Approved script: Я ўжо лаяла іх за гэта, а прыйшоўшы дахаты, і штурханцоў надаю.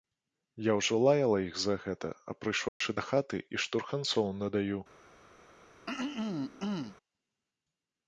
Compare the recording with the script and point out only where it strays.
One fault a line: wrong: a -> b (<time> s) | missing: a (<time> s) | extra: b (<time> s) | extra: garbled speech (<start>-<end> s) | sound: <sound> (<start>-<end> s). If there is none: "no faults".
sound: dropout (2.7-2.8 s)
sound: throat clearing (5.9-7.0 s)